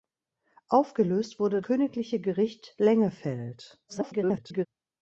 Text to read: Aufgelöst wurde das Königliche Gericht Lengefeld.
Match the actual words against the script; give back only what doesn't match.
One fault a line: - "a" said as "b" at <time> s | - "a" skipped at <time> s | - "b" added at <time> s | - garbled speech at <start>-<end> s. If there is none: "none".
- "das" skipped at 1.6 s
- garbled speech at 3.9-4.7 s